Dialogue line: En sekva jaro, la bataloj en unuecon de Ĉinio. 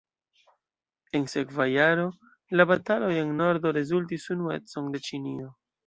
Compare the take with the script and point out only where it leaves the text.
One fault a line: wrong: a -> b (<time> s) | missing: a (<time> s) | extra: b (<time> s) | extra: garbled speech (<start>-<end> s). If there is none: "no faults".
extra: nordo rezultis (3.4 s)